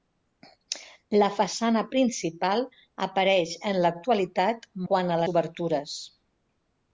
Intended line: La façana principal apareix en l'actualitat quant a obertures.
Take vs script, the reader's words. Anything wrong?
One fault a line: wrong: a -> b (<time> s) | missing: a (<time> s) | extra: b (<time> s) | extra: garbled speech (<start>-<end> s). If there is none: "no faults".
no faults